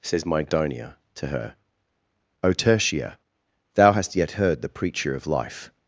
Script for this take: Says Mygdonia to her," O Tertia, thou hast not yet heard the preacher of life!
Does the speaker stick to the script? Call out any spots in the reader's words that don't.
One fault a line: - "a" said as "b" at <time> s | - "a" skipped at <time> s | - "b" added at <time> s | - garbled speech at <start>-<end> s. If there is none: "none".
- "not" skipped at 4.1 s